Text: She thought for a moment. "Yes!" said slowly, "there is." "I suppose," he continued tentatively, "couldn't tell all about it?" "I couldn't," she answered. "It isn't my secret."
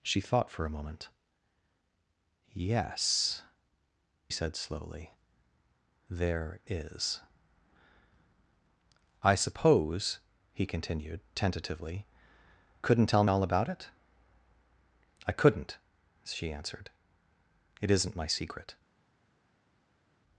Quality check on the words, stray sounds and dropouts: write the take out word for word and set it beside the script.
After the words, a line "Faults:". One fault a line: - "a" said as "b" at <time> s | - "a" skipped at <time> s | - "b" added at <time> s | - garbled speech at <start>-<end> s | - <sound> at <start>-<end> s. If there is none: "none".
She thought for a moment. "Yes!" said slowly, "there is." "I suppose," he continued tentatively, "couldn't tell all about it?" "I couldn't," she answered. "It isn't my secret."
Faults:
none